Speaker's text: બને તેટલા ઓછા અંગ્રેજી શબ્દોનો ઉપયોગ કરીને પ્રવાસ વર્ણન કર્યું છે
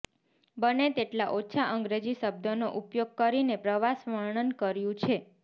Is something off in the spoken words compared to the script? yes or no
no